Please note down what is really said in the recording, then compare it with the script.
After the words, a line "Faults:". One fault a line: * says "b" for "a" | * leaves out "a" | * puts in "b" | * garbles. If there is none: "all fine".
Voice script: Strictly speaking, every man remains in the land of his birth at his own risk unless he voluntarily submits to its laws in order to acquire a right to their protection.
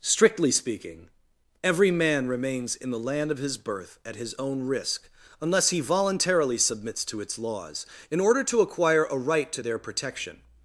Strictly speaking, every man remains in the land of his birth at his own risk unless he voluntarily submits to its laws in order to acquire a right to their protection.
Faults:
all fine